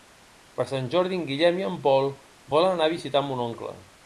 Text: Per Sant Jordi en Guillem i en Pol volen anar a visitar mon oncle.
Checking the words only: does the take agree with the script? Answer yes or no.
yes